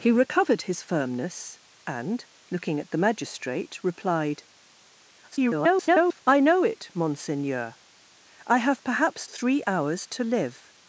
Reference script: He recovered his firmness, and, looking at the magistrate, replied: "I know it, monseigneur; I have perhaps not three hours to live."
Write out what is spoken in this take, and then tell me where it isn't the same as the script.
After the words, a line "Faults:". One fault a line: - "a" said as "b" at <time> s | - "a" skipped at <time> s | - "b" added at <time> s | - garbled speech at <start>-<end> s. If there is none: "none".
He recovered his firmness, and, looking at the magistrate, replied: [garbled] "I know it, monseigneur; I have perhaps three hours to live."
Faults:
- garbled speech at 5.3-6.2 s
- "not" skipped at 9.3 s